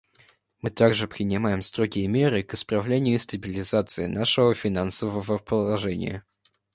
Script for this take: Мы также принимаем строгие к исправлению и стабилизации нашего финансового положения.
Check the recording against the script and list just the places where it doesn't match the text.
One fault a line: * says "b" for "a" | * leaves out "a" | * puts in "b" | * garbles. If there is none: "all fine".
* puts in "меры"